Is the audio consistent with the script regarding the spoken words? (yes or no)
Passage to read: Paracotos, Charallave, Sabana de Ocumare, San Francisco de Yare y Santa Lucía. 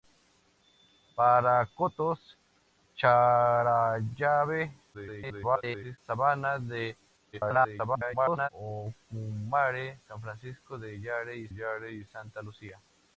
no